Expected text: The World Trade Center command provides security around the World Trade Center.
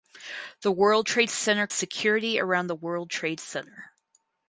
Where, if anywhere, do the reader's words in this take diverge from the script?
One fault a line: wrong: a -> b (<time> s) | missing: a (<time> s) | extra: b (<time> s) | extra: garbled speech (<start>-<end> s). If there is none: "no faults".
missing: command provides (1.7 s)